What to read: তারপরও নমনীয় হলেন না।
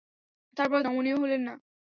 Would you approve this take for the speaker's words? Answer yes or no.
yes